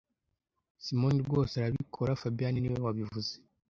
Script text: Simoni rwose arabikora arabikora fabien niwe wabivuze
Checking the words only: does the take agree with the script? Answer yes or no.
no